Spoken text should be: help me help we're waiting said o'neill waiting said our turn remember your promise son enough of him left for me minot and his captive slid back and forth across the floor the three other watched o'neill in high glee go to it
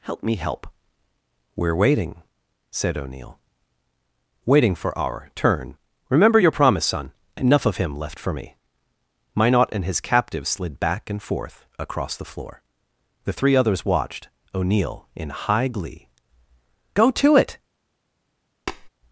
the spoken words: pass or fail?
fail